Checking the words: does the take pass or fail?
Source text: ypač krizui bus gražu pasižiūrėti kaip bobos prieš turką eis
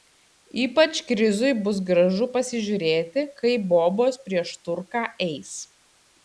pass